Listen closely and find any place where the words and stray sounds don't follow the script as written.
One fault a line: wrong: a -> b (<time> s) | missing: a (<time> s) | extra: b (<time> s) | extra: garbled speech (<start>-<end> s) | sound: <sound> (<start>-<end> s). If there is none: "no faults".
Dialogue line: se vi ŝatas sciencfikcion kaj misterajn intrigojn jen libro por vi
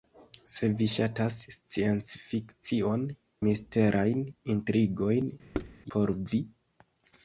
missing: kaj (3.0 s)
missing: jen libro (5.3 s)
sound: thud (5.5-5.8 s)